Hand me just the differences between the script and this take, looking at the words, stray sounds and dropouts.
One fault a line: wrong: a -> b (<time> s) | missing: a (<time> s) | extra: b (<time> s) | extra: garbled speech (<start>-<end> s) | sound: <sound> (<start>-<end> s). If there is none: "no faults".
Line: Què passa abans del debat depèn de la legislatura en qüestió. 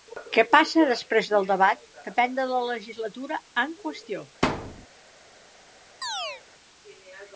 wrong: abans -> després (0.9 s)
sound: thud (4.4-4.9 s)
sound: chirp (6.0-6.4 s)